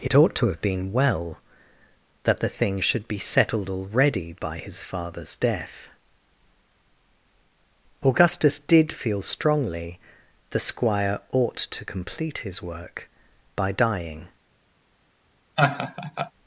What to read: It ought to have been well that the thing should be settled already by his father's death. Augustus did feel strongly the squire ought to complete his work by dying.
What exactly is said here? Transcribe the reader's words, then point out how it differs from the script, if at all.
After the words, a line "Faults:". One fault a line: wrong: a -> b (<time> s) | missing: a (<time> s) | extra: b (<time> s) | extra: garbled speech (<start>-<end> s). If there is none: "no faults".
It ought to have been well that the thing should be settled already by his father's death. Augustus did feel strongly the squire ought to complete his work by dying.
Faults:
no faults